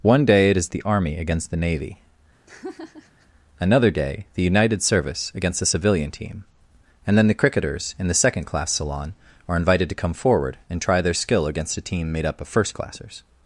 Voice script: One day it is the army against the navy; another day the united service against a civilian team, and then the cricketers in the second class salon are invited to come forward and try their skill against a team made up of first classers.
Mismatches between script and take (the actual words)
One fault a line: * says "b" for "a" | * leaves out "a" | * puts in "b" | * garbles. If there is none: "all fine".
* says "the" for "a"